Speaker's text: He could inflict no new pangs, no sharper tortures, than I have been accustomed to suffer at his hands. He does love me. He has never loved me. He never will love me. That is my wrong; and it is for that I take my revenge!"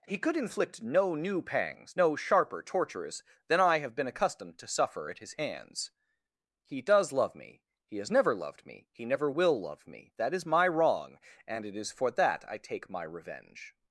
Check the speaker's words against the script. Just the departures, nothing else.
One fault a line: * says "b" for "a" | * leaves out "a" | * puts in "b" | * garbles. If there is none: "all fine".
all fine